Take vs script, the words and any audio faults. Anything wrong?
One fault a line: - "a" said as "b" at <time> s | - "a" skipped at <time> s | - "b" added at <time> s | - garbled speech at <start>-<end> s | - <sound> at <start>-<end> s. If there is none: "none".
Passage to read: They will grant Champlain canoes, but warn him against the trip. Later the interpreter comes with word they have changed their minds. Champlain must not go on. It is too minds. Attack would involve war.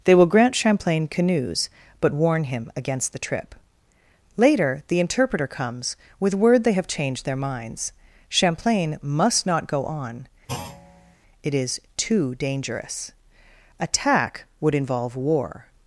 - thud at 10.5-11.2 s
- "minds" said as "dangerous" at 12.4 s